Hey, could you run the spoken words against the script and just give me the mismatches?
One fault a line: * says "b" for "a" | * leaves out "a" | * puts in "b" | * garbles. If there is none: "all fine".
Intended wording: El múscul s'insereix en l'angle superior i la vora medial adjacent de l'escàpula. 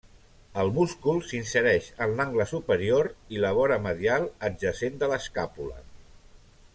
all fine